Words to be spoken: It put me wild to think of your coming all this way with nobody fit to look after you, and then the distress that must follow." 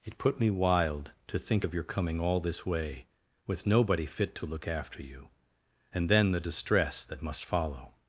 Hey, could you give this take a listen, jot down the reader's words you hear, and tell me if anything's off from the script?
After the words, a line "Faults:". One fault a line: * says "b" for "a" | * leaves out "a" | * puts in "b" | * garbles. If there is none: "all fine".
It put me wild to think of your coming all this way with nobody fit to look after you, and then the distress that must follow."
Faults:
all fine